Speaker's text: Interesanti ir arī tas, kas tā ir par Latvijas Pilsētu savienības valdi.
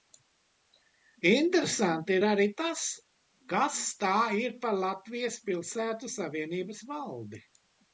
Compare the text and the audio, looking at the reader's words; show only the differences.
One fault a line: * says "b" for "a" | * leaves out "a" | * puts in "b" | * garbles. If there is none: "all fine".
all fine